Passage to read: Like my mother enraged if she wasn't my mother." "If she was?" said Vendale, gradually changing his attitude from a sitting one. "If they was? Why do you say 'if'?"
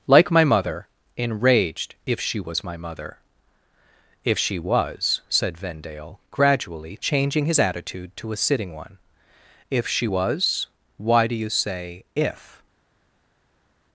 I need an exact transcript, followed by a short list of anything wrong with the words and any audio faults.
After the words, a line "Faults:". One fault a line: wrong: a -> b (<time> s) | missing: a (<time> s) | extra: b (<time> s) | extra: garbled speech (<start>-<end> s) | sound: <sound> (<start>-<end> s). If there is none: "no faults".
Like my mother enraged if she was my mother." "If she was?" said Vendale, gradually changing his attitude to a sitting one. "If she was? Why do you say 'if'?"
Faults:
wrong: wasn't -> was (2.4 s)
wrong: from -> to (8.2 s)
wrong: they -> she (9.9 s)